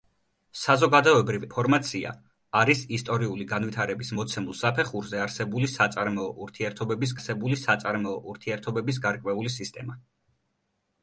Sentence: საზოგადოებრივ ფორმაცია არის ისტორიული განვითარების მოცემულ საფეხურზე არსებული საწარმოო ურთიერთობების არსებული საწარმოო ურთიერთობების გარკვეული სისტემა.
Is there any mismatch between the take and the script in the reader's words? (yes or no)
no